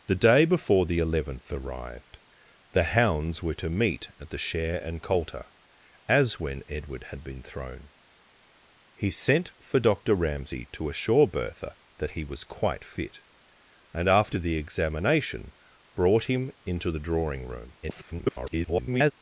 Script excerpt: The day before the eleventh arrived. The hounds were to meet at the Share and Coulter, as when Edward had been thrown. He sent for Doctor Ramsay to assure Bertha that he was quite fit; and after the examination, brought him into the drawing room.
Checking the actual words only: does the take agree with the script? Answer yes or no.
no